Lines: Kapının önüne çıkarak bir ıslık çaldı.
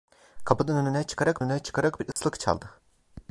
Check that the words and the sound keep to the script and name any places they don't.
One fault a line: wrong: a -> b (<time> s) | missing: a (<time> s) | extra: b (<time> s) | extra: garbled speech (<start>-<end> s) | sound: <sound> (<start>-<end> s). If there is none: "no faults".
extra: önüne çıkarak (1.4 s)
sound: dropout (2.1-2.2 s)